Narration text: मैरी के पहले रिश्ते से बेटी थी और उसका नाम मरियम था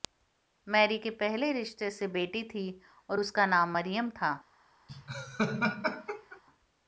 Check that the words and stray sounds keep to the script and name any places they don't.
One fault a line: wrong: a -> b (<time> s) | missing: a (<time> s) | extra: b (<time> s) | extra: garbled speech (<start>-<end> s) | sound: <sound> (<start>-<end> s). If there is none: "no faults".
sound: laugh (4.9-6.4 s)